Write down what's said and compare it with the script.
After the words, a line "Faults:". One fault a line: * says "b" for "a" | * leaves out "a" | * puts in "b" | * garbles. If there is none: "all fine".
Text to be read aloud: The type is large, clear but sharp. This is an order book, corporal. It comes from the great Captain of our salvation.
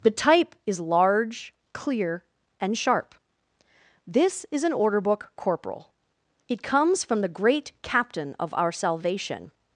The type is large, clear and sharp. This is an order book, corporal. It comes from the great Captain of our salvation.
Faults:
* says "and" for "but"